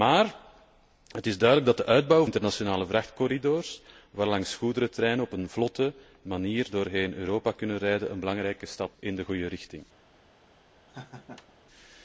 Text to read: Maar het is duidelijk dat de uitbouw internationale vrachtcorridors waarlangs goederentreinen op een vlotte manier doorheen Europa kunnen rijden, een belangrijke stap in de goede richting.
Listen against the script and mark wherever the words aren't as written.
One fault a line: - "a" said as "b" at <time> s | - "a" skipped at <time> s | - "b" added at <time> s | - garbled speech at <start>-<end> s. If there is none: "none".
none